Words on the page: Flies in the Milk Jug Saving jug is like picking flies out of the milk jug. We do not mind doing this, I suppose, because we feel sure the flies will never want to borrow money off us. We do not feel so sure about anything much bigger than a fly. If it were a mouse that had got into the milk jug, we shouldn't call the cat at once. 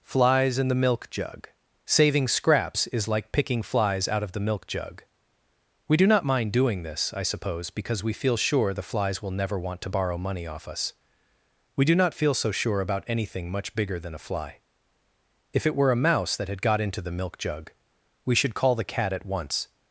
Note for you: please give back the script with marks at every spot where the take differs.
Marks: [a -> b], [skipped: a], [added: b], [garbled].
Flies in the Milk Jug Saving [jug -> scraps] is like picking flies out of the milk jug. We do not mind doing this, I suppose, because we feel sure the flies will never want to borrow money off us. We do not feel so sure about anything much bigger than a fly. If it were a mouse that had got into the milk jug, we [shouldn't -> should] call the cat at once.